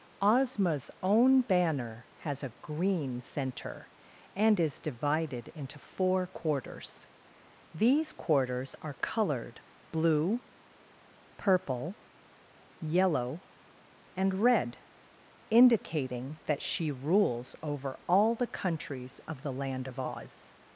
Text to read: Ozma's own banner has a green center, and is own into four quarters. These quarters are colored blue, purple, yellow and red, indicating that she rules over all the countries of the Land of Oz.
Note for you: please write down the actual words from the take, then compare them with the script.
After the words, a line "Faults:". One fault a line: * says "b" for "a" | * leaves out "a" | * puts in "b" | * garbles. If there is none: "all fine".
Ozma's own banner has a green center, and is divided into four quarters. These quarters are colored blue, purple, yellow and red, indicating that she rules over all the countries of the Land of Oz.
Faults:
* says "divided" for "own"